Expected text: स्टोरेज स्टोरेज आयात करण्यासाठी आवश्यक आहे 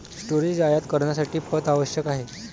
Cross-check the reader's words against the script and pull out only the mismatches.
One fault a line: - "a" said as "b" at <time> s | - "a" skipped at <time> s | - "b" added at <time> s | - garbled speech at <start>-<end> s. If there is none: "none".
- "स्टोरेज" skipped at 0.6 s
- "पथ" added at 1.5 s